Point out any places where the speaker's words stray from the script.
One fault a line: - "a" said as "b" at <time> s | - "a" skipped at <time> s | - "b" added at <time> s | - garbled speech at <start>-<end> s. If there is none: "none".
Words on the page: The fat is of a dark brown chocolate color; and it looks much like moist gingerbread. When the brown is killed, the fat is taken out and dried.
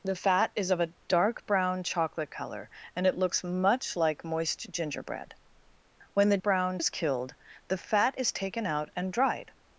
none